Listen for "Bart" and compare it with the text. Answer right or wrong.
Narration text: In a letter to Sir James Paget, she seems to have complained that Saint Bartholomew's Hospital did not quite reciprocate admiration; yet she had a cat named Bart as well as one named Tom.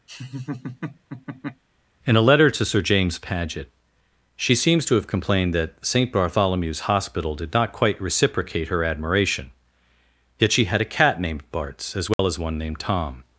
wrong